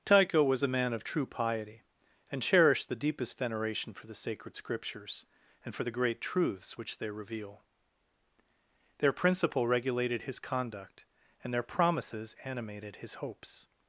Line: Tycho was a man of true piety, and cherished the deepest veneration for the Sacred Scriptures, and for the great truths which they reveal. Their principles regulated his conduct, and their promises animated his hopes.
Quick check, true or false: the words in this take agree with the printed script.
false